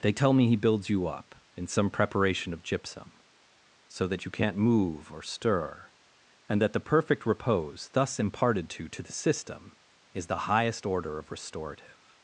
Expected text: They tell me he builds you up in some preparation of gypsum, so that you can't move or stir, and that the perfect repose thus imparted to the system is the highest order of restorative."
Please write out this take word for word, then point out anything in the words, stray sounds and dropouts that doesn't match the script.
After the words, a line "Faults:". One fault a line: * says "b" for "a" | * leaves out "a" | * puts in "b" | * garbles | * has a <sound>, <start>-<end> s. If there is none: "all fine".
They tell me he builds you up in some preparation of gypsum, so that you can't move or stir, and that the perfect repose thus imparted to to the system is the highest order of restorative."
Faults:
* puts in "to"